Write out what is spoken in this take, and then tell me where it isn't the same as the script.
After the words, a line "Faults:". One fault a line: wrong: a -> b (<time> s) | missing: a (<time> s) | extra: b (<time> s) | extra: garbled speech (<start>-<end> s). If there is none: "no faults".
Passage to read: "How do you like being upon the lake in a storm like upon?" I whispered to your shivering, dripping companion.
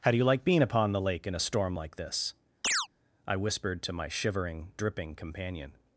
"How do you like being upon the lake in a storm like this?" I whispered to my shivering, dripping companion.
Faults:
wrong: upon -> this (2.0 s)
wrong: your -> my (3.9 s)